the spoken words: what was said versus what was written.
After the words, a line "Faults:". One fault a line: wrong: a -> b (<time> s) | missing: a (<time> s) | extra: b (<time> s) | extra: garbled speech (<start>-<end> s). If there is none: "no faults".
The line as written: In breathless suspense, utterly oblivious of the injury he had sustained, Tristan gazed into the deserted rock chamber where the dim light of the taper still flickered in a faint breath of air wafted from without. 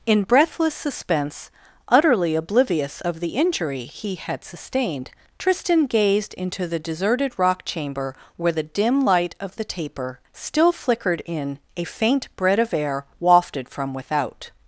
In breathless suspense, utterly oblivious of the injury he had sustained, Tristan gazed into the deserted rock chamber where the dim light of the taper still flickered in a faint bread of air wafted from without.
Faults:
wrong: breath -> bread (12.4 s)